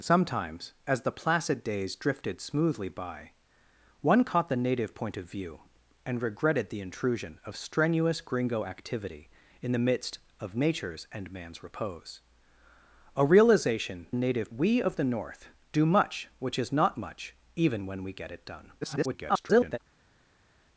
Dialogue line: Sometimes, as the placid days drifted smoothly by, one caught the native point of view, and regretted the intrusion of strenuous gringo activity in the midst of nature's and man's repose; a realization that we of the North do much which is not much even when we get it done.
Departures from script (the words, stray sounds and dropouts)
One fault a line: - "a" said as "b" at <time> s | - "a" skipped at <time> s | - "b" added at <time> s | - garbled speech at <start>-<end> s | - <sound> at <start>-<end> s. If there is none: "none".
- "that" said as "native" at 14.1 s
- garbled speech at 18.8-19.8 s